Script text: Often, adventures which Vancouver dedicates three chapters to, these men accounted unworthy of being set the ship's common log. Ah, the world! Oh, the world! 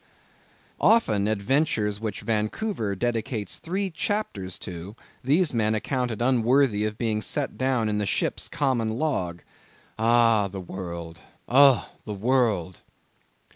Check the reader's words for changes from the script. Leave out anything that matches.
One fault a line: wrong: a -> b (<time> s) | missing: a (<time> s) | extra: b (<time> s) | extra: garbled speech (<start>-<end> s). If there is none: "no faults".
extra: down in (7.6 s)